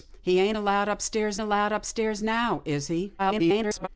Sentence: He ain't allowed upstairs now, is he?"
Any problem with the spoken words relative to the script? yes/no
yes